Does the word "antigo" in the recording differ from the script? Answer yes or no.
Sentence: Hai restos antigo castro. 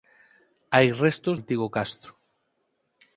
no